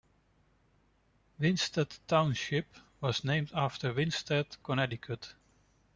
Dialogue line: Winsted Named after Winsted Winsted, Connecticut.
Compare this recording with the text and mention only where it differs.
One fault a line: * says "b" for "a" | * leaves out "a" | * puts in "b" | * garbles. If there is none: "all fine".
* puts in "Township was"
* leaves out "Winsted"